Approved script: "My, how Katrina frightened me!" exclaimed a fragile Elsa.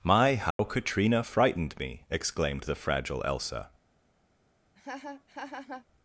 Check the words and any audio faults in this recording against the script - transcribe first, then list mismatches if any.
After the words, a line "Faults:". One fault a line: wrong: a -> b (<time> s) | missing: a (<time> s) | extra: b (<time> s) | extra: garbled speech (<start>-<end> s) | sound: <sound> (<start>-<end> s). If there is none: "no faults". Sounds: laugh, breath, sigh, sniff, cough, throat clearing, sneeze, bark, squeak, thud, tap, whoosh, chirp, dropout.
"My, how Katrina frightened me!" exclaimed the fragile Elsa.
Faults:
sound: dropout (0.5-0.6 s)
wrong: a -> the (2.6 s)
sound: laugh (4.8-5.9 s)